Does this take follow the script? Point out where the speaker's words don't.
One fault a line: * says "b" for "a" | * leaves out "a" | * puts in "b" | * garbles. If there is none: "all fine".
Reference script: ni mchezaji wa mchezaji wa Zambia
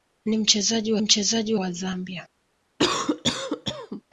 all fine